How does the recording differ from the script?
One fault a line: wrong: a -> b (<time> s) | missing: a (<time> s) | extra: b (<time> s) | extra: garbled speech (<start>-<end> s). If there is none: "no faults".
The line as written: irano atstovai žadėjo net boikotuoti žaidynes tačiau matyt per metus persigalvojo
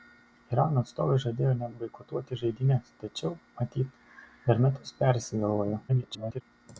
extra: garbled speech (5.9-6.4 s)